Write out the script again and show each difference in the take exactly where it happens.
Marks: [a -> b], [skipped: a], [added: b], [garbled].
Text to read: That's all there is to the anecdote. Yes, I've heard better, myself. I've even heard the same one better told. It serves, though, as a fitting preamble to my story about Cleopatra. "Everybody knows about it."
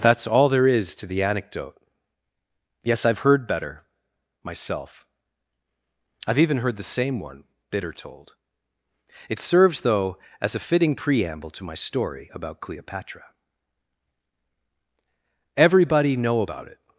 That's all there is to the anecdote. Yes, I've heard better, myself. I've even heard the same one [better -> bitter] told. It serves, though, as a fitting preamble to my story about Cleopatra. "Everybody [knows -> know] about it."